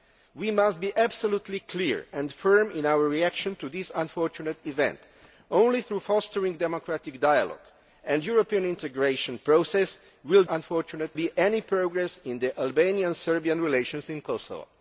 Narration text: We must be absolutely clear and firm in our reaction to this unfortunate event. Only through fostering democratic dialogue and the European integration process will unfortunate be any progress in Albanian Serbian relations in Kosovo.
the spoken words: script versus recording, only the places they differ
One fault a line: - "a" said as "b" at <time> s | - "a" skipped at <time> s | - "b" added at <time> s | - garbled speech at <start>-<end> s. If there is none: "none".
none